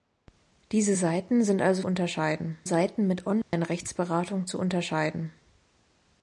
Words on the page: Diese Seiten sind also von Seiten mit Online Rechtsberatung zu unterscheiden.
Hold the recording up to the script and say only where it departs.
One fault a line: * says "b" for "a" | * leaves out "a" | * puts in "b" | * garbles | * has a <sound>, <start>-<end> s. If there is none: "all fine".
* says "unterscheiden" for "von"
* has a dropout, 3.4-3.5 s